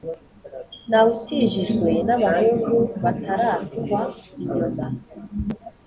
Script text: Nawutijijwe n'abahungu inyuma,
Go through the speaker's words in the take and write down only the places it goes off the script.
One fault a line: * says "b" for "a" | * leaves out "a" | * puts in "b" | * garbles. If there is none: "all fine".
* puts in "bataraswa"